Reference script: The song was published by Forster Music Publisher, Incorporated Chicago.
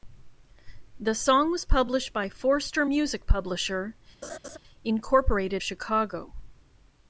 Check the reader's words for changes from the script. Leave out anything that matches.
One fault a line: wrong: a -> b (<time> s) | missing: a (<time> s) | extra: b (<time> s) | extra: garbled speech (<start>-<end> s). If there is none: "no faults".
no faults